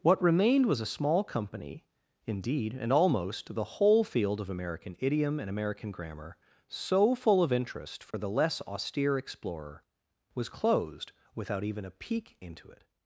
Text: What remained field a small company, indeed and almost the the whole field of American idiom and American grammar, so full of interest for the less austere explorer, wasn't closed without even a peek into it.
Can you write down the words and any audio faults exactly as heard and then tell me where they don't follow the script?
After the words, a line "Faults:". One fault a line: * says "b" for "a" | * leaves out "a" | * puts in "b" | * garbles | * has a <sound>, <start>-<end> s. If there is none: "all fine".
What remained was a small company, indeed and almost the whole field of American idiom and American grammar, so full of interest for the less austere explorer, was closed without even a peek into it.
Faults:
* says "was" for "field"
* leaves out "the"
* has a dropout, 8.1-8.1 s
* says "was" for "wasn't"